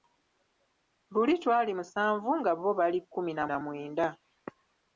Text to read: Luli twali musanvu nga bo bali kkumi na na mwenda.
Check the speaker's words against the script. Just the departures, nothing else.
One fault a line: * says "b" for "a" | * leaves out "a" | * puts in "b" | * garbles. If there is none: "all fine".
all fine